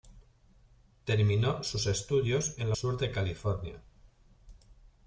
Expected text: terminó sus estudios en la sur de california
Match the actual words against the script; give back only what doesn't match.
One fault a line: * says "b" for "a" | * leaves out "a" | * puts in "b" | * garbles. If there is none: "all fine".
all fine